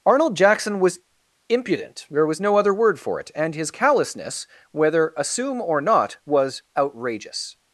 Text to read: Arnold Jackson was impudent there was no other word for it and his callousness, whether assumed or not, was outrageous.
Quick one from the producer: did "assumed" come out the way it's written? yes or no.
no